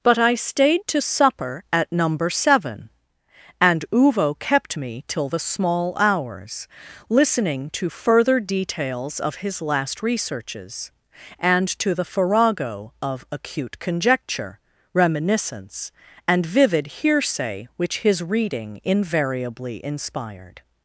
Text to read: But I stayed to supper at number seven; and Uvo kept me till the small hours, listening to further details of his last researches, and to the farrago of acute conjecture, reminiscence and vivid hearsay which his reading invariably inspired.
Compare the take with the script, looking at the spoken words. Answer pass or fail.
pass